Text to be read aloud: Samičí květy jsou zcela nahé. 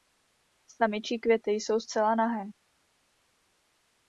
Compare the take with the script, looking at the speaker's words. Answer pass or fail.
pass